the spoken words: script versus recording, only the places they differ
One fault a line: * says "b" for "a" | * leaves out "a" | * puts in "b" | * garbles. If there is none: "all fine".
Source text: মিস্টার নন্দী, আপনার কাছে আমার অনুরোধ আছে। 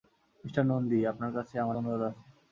all fine